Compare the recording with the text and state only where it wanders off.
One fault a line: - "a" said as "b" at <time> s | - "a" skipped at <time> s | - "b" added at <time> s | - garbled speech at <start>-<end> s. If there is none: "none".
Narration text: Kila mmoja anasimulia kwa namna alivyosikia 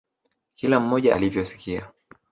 - "anasimulia kwa namna" skipped at 1.1 s